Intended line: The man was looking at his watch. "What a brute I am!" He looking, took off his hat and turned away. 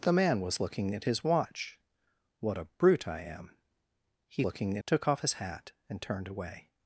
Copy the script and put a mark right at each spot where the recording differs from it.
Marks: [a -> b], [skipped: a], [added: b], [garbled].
The man was looking at his watch. "What a brute I am!" He looking, took off his hat and turned away.